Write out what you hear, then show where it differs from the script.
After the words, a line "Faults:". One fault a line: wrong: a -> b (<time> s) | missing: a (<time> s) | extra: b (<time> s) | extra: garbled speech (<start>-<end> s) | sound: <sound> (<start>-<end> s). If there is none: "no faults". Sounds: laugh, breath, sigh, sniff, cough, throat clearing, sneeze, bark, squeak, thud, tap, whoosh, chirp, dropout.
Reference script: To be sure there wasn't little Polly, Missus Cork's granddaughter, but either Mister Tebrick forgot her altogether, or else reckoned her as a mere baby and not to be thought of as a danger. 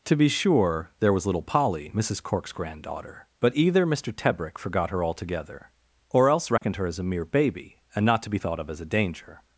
To be sure there was little Polly, Missus Cork's granddaughter, but either Mister Tebrick forgot her altogether, or else reckoned her as a mere baby and not to be thought of as a danger.
Faults:
wrong: wasn't -> was (1.1 s)
sound: dropout (6.6-6.6 s)